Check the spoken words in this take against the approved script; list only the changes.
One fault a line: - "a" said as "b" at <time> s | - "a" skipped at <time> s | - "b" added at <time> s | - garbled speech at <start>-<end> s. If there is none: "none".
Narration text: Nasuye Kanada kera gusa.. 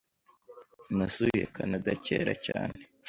- "gusa" said as "cyane" at 2.5 s